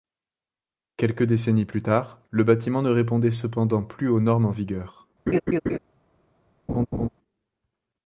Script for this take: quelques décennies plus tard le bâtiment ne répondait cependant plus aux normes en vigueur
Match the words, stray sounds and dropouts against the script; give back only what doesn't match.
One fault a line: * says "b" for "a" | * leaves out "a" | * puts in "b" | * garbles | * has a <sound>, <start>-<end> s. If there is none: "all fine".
* has a laugh, 5.3-5.8 s
* has a laugh, 6.7-7.1 s